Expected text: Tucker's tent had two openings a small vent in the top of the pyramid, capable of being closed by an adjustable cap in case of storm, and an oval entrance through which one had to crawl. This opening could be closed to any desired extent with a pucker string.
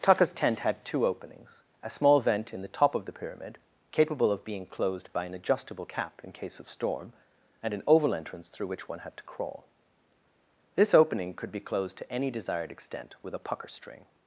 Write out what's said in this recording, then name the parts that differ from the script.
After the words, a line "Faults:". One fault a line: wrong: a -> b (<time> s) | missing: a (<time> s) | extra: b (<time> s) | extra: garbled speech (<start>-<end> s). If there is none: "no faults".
Tucker's tent had two openings a small vent in the top of the pyramid, capable of being closed by an adjustable cap in case of storm, and an oval entrance through which one had to crawl. This opening could be closed to any desired extent with a pucker string.
Faults:
no faults